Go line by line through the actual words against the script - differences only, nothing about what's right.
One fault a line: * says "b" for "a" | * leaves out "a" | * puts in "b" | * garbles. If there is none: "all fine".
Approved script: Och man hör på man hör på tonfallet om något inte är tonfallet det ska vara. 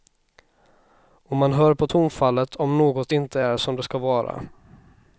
* leaves out "man hör på"
* says "som" for "tonfallet"